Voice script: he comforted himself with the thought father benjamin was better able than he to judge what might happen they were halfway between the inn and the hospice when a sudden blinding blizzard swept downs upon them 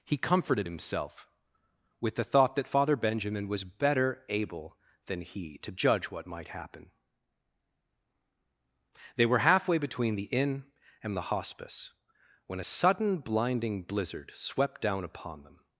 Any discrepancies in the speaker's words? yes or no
yes